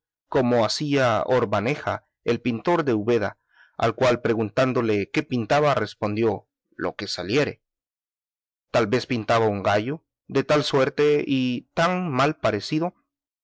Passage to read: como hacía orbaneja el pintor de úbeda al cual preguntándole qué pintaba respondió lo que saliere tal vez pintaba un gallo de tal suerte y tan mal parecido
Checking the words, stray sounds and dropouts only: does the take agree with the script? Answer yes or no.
yes